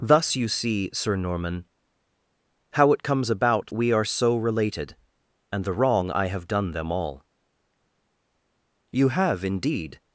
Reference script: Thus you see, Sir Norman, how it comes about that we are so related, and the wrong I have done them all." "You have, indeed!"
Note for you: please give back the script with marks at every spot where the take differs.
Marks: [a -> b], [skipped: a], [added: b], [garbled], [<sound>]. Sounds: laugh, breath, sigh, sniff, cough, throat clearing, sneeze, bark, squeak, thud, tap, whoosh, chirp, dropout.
Thus you see, Sir Norman, how it comes about [skipped: that] we are so related, and the wrong I have done them all." "You have, indeed!"